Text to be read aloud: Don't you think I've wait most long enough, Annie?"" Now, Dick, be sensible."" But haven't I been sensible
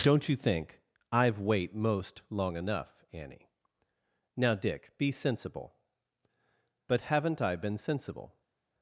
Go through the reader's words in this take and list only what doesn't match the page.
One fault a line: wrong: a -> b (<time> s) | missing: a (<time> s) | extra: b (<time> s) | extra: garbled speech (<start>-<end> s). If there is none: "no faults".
no faults